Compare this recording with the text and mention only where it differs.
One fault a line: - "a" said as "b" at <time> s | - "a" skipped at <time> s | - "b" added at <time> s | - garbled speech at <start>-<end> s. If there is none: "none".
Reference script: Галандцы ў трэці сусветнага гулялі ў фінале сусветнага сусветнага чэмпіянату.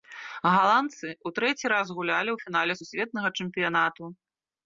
- "сусветнага" said as "раз" at 1.7 s
- "сусветнага" skipped at 3.3 s